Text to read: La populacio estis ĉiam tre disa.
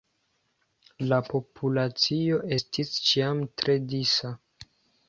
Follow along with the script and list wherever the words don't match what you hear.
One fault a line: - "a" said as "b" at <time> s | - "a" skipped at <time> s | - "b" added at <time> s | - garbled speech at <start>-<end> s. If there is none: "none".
none